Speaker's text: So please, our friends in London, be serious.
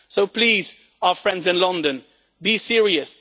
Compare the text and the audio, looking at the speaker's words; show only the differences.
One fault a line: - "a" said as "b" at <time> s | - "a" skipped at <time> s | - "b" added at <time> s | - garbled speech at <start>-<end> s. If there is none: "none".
none